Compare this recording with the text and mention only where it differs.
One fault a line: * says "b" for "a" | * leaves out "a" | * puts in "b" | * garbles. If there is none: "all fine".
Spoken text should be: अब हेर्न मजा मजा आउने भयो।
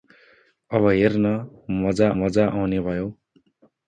all fine